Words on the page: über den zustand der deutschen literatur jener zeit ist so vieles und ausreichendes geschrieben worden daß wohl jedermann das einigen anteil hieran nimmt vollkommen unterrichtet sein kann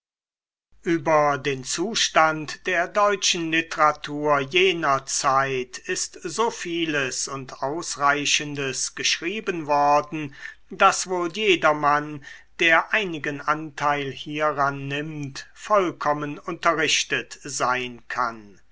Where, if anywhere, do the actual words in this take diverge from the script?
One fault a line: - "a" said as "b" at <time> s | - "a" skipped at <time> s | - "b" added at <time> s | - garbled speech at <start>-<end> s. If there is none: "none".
- "das" said as "der" at 12.6 s